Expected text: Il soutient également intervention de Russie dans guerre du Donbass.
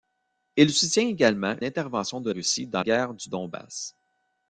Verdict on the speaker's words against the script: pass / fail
pass